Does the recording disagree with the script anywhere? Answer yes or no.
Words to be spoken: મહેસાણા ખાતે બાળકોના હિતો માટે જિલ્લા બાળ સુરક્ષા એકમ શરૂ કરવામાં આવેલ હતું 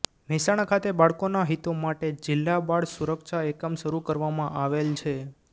yes